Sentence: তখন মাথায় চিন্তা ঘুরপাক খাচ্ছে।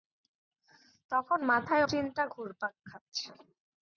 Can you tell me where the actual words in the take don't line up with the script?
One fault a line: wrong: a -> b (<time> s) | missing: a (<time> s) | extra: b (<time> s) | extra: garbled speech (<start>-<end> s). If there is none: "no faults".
no faults